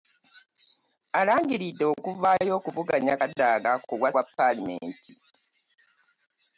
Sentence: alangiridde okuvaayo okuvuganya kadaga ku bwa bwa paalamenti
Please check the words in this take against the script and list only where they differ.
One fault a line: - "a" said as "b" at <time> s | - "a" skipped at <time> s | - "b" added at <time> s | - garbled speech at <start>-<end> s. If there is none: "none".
none